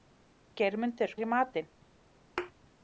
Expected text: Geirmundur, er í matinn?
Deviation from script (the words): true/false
false